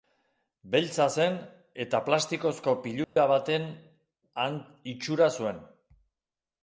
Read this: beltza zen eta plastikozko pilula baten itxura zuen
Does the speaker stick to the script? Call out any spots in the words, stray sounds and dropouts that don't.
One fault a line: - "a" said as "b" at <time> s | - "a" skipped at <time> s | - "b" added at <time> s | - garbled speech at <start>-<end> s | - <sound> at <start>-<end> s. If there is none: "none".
- dropout at 3.0-3.2 s